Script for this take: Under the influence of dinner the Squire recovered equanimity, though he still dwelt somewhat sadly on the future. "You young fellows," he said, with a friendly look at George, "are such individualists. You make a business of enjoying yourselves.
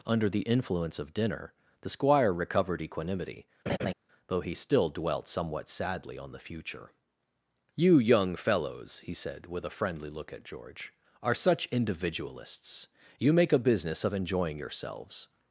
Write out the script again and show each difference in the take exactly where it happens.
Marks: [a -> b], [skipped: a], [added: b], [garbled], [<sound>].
Under the influence of dinner the Squire recovered equanimity, [laugh] though he still dwelt somewhat sadly on the future. "You young fellows," he said, with a friendly look at George, "are such individualists. You make a business of enjoying yourselves.